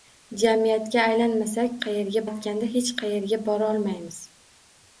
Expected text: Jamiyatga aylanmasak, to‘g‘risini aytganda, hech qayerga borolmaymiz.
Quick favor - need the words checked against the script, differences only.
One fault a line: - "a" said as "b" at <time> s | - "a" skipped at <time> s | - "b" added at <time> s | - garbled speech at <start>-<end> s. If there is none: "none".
- "to‘g‘risini" said as "qayerga" at 1.9 s